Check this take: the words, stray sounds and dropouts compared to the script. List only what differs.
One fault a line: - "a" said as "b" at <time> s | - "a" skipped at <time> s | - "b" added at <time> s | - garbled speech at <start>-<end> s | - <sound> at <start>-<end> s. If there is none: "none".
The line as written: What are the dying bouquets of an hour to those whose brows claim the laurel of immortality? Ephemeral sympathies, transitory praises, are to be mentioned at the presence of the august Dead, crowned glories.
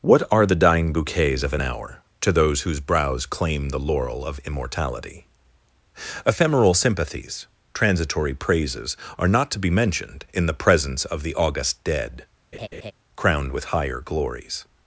- "not" added at 9.3 s
- "at" said as "in" at 10.3 s
- laugh at 12.5-12.9 s
- "with higher" added at 13.5 s